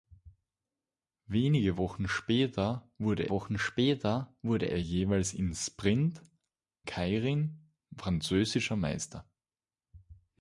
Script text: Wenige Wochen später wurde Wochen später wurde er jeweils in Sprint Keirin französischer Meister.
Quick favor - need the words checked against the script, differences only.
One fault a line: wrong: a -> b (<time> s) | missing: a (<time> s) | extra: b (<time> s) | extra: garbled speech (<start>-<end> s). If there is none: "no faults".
no faults